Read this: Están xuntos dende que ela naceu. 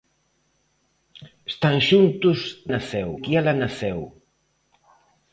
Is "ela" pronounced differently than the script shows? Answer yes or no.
no